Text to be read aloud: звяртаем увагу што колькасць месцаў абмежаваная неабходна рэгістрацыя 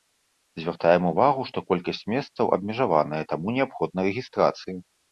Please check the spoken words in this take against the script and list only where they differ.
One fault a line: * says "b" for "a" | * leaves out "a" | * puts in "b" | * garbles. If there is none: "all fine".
* puts in "таму"